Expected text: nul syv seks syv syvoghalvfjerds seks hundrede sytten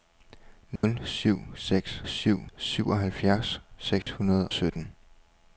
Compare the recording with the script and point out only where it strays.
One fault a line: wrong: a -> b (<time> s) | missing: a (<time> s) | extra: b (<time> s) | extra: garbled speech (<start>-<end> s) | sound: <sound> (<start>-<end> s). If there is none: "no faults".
sound: dropout (0.8-0.8 s)
sound: dropout (4.0-4.1 s)